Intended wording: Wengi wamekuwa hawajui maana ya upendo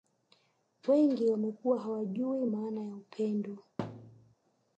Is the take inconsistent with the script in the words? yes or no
no